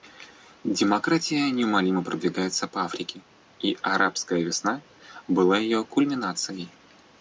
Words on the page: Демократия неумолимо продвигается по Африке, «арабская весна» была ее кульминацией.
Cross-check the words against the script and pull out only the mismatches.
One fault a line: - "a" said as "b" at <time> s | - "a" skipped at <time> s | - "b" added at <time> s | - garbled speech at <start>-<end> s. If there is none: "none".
- "и" added at 3.6 s